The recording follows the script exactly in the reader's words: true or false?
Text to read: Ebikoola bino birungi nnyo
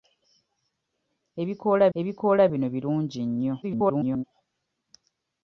false